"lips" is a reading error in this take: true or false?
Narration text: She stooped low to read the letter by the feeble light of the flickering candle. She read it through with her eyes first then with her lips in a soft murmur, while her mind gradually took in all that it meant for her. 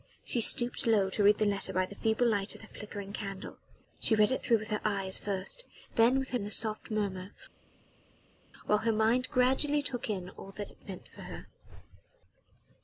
true